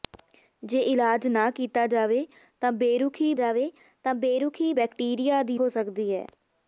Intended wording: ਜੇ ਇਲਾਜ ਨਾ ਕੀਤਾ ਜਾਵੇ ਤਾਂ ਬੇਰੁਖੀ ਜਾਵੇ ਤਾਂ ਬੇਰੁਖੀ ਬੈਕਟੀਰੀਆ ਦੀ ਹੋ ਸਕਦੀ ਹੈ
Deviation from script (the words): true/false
false